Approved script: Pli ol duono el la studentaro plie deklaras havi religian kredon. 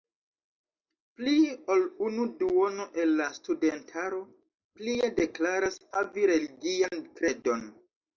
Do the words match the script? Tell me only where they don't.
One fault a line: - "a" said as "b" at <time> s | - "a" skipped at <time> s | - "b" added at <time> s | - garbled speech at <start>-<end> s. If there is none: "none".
- "unu" added at 2.0 s